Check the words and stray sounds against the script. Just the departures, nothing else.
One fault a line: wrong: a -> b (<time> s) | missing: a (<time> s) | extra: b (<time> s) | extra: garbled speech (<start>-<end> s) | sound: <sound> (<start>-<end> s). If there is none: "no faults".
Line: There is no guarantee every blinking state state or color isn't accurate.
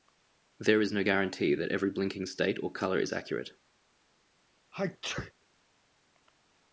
extra: that (1.6 s)
missing: state (2.6 s)
wrong: isn't -> is (3.0 s)
sound: sneeze (4.7-5.3 s)